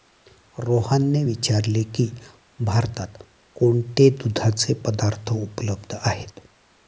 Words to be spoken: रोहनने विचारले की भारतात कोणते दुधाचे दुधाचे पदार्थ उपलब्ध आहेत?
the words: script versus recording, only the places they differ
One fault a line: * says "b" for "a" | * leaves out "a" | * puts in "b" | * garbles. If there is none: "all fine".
* leaves out "दुधाचे"